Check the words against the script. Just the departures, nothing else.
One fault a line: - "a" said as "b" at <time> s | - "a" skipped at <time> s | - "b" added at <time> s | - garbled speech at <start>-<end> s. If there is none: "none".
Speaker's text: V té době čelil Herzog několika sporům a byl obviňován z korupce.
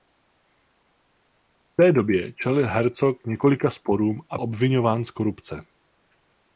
- "byl" skipped at 4.4 s